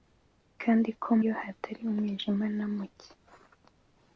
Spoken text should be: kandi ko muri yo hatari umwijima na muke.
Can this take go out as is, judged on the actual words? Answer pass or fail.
fail